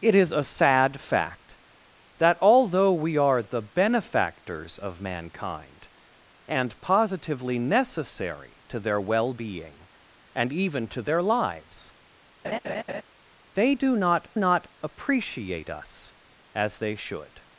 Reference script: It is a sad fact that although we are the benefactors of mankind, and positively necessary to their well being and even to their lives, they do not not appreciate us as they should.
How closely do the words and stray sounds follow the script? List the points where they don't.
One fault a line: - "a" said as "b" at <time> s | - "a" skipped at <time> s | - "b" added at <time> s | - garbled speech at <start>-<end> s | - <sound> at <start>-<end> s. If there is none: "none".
- laugh at 12.4-13.0 s